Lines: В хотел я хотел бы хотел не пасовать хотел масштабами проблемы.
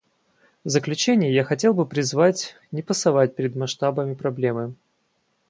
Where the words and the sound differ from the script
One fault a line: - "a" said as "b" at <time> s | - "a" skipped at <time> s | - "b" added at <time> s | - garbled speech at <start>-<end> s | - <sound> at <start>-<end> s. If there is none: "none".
- "хотел" said as "заключение" at 0.7 s
- "хотел" said as "призвать" at 1.9 s
- "хотел" said as "перед" at 3.4 s